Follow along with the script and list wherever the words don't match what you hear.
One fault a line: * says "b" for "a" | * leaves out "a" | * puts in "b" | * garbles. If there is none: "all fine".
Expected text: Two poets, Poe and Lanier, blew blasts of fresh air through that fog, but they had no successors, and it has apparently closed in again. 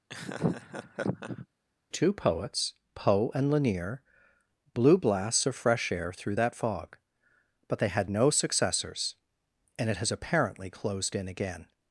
all fine